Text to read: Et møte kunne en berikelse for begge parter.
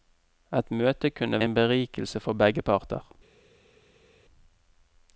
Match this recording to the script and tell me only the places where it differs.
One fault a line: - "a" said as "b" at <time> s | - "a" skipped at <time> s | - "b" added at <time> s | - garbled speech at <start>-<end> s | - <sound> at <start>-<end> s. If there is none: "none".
none